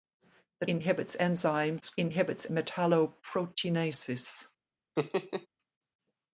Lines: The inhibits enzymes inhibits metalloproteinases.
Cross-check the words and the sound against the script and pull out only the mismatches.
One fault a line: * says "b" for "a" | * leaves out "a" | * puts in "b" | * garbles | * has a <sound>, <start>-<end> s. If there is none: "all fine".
* has a laugh, 5.0-5.5 s